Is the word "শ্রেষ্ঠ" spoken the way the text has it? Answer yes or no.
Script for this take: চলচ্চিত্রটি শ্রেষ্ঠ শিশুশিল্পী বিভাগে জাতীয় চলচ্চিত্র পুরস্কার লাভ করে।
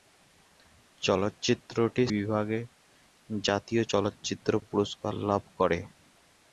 no